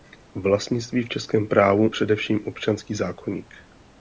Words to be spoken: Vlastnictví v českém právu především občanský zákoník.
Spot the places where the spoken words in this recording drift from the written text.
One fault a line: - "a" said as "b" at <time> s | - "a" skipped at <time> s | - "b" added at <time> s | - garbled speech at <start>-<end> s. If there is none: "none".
none